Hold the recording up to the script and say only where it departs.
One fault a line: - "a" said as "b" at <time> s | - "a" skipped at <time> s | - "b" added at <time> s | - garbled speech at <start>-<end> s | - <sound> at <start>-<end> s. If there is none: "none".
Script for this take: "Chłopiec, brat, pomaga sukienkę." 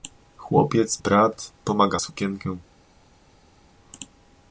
none